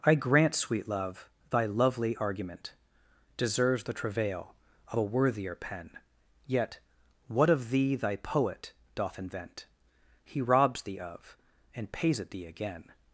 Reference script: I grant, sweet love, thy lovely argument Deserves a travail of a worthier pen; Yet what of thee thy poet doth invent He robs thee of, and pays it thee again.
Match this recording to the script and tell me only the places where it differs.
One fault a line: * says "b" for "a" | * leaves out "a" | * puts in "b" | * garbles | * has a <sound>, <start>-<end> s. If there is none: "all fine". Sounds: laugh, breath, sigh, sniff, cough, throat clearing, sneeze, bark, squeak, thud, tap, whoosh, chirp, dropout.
* says "the" for "a"